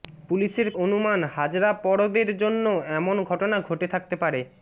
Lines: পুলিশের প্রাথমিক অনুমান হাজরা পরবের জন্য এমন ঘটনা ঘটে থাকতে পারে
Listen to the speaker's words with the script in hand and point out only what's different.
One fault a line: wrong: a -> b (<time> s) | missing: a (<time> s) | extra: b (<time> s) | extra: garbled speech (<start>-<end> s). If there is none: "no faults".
missing: প্রাথমিক (0.7 s)